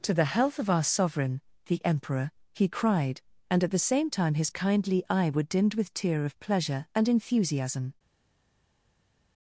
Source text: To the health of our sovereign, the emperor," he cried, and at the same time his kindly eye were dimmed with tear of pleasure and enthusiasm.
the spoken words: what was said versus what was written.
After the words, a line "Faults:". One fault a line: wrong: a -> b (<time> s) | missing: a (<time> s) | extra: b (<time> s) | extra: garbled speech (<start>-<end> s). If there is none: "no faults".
To the health of our sovereign, the emperor," he cried, and at the same time his kindly eye were dimmed with tear of pleasure and enthusiasm.
Faults:
no faults